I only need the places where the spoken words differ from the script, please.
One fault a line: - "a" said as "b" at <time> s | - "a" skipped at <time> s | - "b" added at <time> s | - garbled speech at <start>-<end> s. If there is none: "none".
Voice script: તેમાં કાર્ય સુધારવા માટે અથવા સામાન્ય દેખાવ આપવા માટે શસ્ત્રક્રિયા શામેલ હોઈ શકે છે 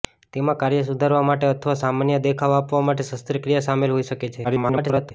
- garbled speech at 4.4-5.1 s